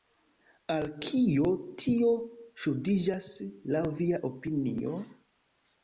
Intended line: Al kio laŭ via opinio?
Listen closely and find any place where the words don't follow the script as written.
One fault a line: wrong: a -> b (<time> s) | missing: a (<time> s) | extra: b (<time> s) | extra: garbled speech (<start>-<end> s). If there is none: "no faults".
extra: tio ŝuldiĝas (1.9 s)